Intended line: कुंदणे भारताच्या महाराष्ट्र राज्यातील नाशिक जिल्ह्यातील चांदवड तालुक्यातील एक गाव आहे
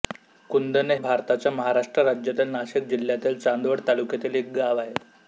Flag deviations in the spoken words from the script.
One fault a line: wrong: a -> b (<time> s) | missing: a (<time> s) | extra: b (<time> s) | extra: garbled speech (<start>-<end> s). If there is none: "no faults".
no faults